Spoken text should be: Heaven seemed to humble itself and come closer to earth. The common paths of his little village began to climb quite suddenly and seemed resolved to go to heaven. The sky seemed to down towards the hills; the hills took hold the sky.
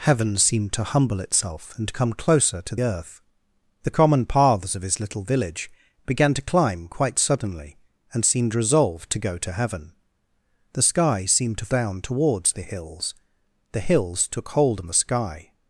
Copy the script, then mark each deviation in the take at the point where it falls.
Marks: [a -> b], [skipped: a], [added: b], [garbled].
Heaven seemed to humble itself and come closer to earth. The common paths of his little village began to climb quite suddenly and seemed resolved to go to heaven. The sky seemed to down towards the hills; the hills took hold the sky.